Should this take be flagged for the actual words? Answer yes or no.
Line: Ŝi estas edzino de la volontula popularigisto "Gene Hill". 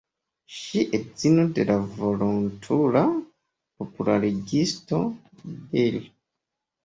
yes